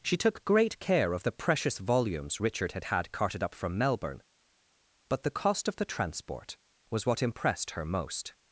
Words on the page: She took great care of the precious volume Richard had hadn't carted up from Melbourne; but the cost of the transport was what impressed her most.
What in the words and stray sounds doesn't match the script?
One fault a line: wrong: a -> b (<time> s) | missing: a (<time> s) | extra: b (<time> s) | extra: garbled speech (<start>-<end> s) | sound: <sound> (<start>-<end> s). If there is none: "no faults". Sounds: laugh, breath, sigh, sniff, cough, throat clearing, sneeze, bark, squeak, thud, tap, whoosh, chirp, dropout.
wrong: volume -> volumes (1.8 s)
wrong: hadn't -> had (2.9 s)